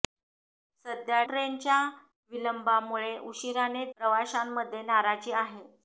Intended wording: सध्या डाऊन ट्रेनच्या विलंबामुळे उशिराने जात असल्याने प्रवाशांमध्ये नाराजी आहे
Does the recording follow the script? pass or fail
fail